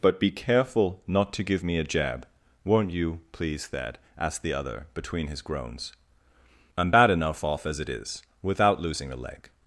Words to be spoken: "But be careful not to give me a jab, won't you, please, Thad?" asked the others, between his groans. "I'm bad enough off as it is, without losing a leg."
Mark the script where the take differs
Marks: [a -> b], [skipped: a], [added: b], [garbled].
"But be careful not to give me a jab, won't you, please, Thad?" asked the [others, -> other] between his groans. "I'm bad enough off as it is, without losing a leg."